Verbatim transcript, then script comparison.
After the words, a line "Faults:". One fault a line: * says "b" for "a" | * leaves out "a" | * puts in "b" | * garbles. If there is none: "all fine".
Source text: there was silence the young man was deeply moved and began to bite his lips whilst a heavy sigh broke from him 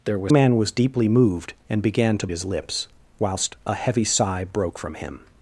there was man was deeply moved and began to his lips whilst a heavy sigh broke from him
Faults:
* leaves out "silence the young"
* leaves out "bite"